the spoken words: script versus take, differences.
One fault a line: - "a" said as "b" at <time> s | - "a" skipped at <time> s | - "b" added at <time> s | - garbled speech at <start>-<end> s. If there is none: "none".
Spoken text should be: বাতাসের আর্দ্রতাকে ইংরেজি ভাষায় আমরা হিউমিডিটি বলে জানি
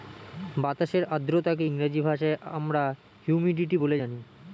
none